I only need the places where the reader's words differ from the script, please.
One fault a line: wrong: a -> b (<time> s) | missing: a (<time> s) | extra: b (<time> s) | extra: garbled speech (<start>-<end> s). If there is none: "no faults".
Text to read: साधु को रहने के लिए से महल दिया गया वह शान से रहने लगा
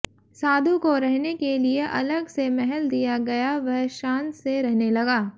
extra: अलग (1.9 s)